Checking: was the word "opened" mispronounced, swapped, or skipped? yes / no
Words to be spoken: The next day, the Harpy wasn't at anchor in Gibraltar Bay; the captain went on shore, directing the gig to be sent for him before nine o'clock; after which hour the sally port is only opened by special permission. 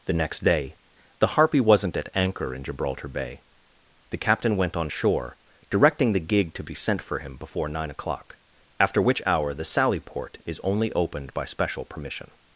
no